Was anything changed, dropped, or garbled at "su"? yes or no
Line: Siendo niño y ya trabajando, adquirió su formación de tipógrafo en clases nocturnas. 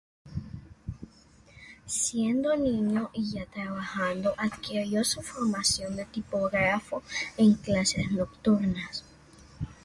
no